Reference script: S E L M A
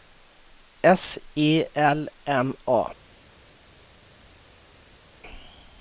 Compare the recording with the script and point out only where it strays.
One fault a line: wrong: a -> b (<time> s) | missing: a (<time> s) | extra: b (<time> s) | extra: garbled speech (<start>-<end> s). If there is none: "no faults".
no faults